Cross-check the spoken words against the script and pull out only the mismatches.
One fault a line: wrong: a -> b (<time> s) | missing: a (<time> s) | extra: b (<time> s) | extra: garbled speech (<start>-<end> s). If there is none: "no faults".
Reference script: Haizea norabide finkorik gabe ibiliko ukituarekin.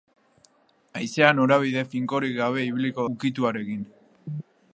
no faults